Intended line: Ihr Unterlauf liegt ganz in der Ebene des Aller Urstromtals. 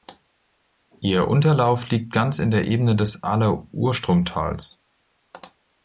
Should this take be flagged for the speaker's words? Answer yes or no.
no